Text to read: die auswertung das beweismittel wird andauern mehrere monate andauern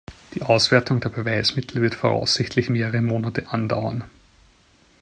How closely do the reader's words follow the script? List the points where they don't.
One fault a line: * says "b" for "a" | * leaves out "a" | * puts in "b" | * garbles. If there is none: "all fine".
* says "der" for "das"
* says "voraussichtlich" for "andauern"